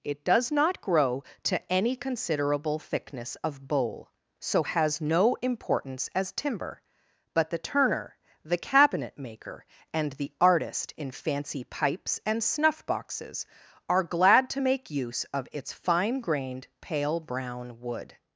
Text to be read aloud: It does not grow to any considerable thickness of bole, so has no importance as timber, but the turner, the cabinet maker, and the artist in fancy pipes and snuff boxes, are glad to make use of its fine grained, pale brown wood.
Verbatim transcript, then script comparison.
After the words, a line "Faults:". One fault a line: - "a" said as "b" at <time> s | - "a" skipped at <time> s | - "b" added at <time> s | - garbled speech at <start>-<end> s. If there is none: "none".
It does not grow to any considerable thickness of bole, so has no importance as timber, but the turner, the cabinet maker, and the artist in fancy pipes and snuff boxes, are glad to make use of its fine grained, pale brown wood.
Faults:
none